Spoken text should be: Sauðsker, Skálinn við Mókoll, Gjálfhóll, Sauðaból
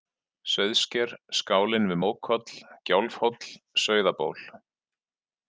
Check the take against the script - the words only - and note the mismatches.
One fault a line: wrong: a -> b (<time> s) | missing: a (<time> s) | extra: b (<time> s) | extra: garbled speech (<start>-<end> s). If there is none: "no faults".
no faults